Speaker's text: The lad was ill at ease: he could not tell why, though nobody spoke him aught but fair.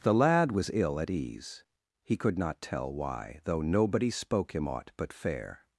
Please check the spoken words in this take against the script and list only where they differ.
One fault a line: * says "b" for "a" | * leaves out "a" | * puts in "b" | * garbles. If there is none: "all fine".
all fine